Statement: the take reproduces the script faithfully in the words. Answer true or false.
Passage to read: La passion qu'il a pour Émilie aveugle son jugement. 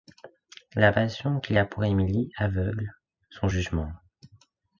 true